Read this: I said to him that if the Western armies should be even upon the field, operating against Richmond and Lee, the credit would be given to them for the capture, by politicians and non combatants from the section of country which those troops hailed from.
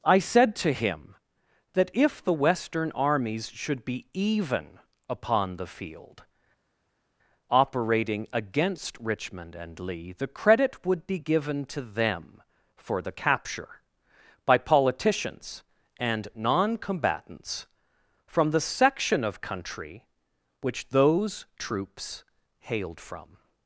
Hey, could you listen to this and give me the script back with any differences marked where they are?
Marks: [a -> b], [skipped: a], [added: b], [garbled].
I said to him that if the Western armies should be even upon the field, operating against Richmond and Lee, the credit would be given to them for the capture, by politicians and non combatants from the section of country which those troops hailed from.